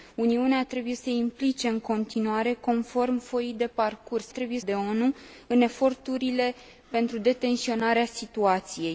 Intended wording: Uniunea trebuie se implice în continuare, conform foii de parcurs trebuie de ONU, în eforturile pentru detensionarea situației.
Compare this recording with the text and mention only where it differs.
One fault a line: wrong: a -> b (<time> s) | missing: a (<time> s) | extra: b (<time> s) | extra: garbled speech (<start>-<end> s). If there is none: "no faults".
no faults